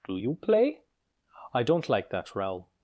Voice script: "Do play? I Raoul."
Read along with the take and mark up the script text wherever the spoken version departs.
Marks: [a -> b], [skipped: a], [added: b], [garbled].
"Do [added: you] play? I [added: don't like that] Raoul."